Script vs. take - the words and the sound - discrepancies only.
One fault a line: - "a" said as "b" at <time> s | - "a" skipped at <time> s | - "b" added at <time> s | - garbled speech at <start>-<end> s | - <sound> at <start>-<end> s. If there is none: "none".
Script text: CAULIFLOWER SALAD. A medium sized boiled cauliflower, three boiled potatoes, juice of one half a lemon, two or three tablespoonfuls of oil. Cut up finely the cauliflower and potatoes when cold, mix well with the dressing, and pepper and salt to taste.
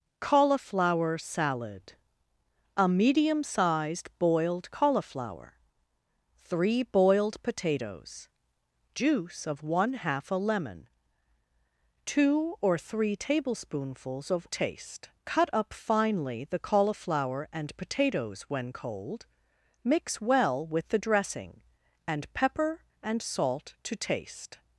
- "oil" said as "taste" at 14.5 s